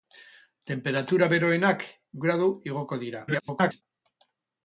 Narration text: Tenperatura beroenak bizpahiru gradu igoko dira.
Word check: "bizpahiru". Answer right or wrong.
wrong